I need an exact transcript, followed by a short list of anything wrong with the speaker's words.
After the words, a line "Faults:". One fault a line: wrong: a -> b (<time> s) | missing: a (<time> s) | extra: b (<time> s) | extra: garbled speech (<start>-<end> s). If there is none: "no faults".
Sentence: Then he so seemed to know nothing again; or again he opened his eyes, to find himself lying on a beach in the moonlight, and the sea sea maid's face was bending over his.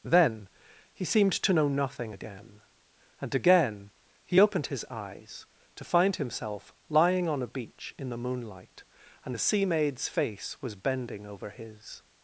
Then he seemed to know nothing again; and again he opened his eyes, to find himself lying on a beach in the moonlight, and the sea maid's face was bending over his.
Faults:
missing: so (1.1 s)
wrong: or -> and (3.2 s)
missing: sea (9.6 s)